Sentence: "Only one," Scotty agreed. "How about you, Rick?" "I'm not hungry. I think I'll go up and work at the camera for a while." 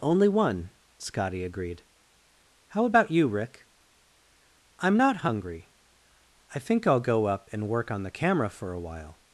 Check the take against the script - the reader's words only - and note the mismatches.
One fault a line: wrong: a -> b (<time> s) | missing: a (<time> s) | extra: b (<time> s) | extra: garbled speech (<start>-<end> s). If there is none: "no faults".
wrong: at -> on (7.9 s)